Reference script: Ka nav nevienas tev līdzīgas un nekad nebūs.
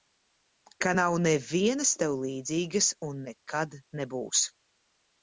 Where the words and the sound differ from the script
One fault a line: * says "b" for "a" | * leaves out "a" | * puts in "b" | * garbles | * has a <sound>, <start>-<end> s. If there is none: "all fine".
all fine